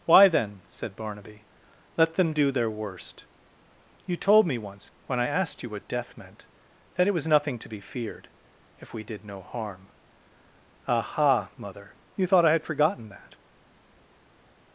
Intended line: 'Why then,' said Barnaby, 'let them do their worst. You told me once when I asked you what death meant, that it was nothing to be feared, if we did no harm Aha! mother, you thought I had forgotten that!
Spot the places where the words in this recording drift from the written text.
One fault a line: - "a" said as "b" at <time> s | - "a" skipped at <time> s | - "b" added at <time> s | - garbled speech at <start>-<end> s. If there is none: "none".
none